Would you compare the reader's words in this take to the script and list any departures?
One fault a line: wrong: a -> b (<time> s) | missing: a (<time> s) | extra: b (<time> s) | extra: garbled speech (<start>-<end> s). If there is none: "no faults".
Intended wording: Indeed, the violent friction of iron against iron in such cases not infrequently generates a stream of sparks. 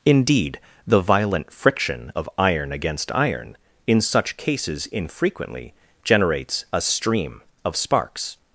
missing: not (4.9 s)